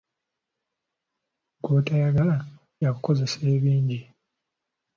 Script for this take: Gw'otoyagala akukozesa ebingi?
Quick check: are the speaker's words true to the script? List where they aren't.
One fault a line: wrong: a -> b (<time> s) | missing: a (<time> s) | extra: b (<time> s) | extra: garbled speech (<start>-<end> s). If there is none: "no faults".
no faults